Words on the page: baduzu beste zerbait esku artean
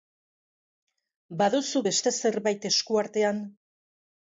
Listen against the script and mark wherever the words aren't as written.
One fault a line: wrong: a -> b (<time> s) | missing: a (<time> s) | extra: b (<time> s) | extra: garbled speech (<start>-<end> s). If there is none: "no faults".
no faults